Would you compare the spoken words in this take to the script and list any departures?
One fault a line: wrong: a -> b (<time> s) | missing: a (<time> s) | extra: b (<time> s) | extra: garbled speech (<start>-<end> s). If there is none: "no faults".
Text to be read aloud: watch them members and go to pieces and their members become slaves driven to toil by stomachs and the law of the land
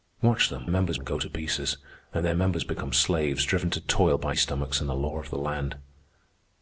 no faults